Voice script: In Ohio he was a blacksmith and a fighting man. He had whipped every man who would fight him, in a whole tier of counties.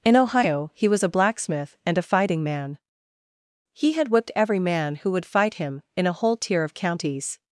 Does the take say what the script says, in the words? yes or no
yes